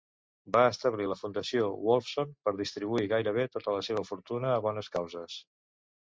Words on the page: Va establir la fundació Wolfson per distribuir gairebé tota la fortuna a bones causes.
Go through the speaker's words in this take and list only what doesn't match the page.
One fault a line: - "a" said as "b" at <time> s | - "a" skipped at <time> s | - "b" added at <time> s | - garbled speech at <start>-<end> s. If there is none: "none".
- "seva" added at 3.9 s